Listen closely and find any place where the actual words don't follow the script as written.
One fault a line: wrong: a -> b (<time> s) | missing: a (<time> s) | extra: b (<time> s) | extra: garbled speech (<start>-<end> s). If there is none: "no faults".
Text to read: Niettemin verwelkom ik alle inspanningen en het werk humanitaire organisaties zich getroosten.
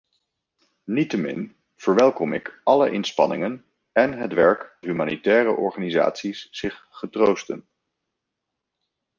no faults